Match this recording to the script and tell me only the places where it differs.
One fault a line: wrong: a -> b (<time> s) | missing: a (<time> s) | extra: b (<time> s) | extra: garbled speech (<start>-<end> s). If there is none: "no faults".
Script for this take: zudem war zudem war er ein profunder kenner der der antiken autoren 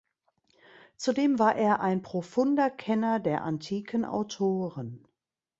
missing: zudem war (1.6 s)
missing: der (3.4 s)